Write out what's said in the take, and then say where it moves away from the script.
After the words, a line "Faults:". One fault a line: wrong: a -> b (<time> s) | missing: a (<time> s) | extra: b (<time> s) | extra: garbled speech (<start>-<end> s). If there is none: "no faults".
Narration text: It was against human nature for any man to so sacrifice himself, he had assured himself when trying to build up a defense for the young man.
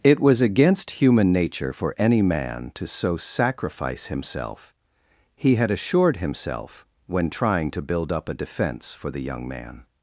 It was against human nature for any man to so sacrifice himself, he had assured himself when trying to build up a defense for the young man.
Faults:
no faults